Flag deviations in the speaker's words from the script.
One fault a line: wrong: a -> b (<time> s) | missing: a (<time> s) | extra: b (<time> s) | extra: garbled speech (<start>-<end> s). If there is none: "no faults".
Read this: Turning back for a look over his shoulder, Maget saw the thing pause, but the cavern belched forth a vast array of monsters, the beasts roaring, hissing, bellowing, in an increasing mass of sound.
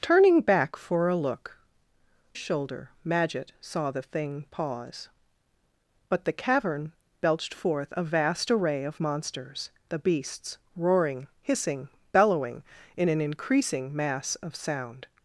missing: over his (1.6 s)